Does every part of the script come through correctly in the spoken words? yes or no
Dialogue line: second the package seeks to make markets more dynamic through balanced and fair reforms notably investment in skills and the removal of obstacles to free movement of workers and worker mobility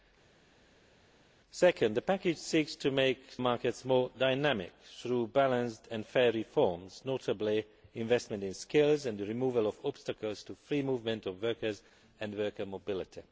yes